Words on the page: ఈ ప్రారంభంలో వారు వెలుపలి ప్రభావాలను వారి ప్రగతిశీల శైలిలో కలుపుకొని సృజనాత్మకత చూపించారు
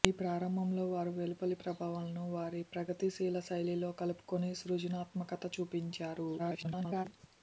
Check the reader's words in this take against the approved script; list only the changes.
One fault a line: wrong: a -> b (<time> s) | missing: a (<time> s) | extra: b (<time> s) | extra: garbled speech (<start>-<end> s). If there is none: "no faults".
extra: garbled speech (6.4-7.1 s)